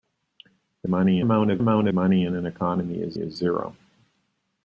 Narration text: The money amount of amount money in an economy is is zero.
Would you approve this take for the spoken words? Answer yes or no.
yes